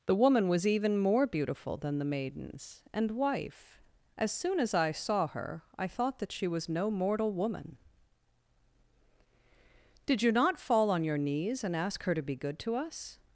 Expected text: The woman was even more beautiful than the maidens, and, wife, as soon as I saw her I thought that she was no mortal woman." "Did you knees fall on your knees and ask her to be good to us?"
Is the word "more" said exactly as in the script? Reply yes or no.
yes